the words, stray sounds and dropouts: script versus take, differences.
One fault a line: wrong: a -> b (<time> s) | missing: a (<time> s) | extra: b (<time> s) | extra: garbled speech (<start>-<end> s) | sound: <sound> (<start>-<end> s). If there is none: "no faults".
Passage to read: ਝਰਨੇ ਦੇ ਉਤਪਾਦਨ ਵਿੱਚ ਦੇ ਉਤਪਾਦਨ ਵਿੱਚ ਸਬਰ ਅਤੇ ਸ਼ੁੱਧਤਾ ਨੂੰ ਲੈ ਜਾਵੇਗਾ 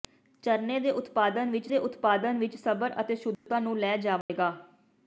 sound: dropout (3.3-3.5 s)
sound: dropout (4.2-4.3 s)